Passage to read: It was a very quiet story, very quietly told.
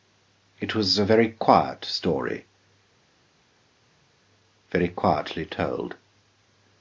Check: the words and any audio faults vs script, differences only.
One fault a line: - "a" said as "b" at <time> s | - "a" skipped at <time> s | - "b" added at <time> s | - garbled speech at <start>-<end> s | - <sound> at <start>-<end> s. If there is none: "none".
none